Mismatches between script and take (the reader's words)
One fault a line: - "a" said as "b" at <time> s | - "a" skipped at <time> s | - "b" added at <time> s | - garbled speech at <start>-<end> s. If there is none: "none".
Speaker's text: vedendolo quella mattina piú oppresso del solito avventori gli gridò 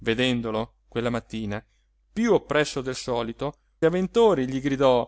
none